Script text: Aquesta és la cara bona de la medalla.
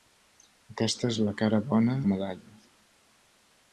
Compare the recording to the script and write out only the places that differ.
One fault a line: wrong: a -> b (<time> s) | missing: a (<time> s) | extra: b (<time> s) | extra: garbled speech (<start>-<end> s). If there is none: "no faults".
missing: de (2.0 s)